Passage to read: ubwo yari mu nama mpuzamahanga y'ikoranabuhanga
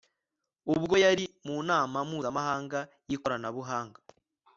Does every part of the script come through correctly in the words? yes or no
yes